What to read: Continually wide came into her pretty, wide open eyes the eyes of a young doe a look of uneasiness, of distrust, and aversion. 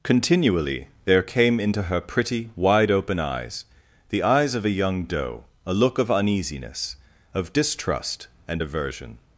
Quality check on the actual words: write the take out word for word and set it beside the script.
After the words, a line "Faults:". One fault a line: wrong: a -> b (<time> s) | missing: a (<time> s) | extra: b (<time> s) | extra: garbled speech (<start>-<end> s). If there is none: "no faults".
Continually there came into her pretty, wide open eyes the eyes of a young doe a look of uneasiness, of distrust, and aversion.
Faults:
wrong: wide -> there (1.1 s)